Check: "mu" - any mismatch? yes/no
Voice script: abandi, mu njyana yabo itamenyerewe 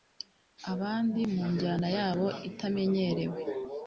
no